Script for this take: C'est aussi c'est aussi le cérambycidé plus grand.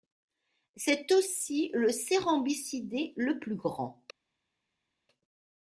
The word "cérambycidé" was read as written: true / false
false